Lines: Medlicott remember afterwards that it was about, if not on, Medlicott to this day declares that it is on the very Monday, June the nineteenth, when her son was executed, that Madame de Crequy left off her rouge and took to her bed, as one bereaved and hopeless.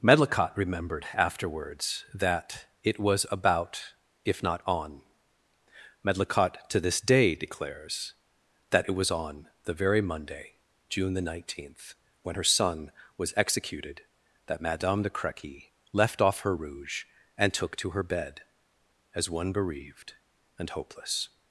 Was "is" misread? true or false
true